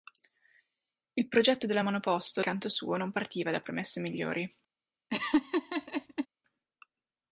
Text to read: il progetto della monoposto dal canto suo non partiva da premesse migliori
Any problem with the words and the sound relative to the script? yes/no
yes